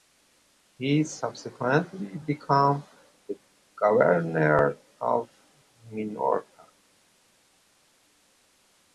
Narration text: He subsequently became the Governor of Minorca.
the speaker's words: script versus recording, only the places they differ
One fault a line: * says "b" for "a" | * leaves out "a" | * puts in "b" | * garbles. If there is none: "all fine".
all fine